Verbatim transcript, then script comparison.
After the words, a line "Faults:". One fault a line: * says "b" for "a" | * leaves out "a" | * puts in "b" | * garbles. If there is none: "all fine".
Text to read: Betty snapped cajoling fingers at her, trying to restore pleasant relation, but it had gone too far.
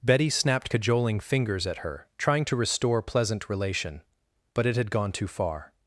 Betty snapped cajoling fingers at her, trying to restore pleasant relation, but it had gone too far.
Faults:
all fine